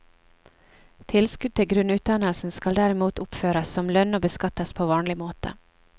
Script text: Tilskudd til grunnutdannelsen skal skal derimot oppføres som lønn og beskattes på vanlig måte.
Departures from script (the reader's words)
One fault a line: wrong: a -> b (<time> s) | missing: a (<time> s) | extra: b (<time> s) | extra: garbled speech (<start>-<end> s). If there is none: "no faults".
missing: skal (2.8 s)